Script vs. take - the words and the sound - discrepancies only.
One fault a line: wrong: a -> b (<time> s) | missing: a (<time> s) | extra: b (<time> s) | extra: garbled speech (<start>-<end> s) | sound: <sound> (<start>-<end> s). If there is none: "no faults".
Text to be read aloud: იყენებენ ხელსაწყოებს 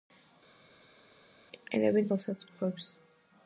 no faults